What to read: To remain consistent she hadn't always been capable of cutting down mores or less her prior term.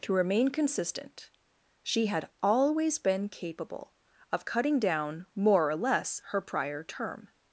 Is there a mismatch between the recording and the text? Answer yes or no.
yes